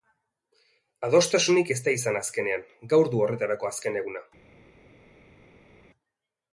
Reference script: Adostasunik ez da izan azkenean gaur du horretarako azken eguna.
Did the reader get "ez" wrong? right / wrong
right